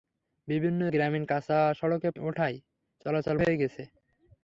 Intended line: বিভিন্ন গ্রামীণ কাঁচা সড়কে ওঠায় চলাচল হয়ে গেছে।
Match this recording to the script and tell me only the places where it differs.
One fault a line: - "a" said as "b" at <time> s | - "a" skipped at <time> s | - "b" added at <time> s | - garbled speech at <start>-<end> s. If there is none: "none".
none